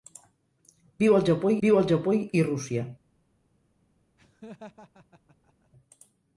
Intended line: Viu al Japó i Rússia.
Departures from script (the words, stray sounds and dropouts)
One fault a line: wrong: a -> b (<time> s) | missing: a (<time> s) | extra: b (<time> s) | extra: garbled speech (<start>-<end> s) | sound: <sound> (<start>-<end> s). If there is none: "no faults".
extra: viu al Japó (1.7 s)
sound: laugh (4.2-5.7 s)